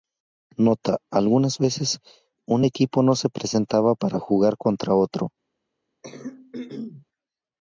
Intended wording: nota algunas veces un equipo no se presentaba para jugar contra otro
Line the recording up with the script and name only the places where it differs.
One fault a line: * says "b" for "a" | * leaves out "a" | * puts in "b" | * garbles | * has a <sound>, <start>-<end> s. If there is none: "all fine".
* has a throat clearing, 6.0-7.1 s